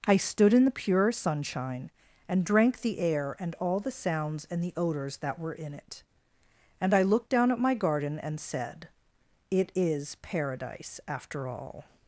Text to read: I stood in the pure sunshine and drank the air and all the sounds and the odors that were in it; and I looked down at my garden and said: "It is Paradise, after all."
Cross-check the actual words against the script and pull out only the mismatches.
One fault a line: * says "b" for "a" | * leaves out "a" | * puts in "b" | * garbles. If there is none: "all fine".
all fine